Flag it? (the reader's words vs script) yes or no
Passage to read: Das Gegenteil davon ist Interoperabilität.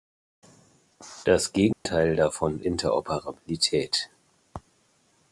yes